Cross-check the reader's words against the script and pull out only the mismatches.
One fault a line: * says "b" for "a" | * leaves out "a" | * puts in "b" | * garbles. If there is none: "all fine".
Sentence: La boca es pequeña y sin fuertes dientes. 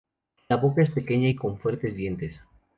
* says "con" for "sin"